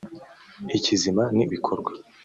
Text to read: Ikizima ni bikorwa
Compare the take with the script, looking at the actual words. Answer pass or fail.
pass